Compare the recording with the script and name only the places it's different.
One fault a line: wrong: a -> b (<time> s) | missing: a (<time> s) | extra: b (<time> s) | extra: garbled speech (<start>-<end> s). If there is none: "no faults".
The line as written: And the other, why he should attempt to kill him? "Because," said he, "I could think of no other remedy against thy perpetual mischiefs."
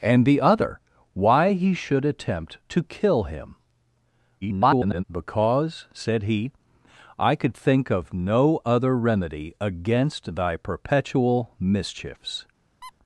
extra: garbled speech (4.4-5.0 s)